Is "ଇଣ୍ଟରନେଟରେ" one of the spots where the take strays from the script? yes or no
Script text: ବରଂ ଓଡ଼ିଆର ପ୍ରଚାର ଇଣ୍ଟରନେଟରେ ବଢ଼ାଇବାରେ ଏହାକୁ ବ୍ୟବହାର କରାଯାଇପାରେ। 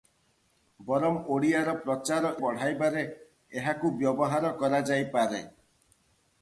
yes